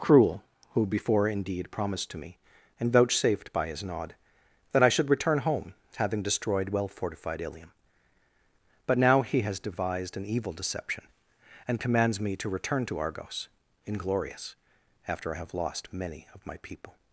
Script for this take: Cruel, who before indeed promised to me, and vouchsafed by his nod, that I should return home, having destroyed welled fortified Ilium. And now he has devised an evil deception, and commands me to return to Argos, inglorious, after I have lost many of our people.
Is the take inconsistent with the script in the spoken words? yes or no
yes